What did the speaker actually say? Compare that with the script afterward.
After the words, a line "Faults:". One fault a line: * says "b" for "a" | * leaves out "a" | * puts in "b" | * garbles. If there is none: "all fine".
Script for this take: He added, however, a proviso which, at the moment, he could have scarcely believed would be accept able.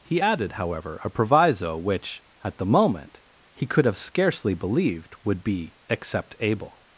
He added, however, a proviso which, at the moment, he could have scarcely believed would be accept able.
Faults:
all fine